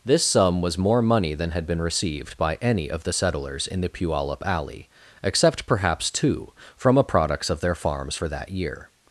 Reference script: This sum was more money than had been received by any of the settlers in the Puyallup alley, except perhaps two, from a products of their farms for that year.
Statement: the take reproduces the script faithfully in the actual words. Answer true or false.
true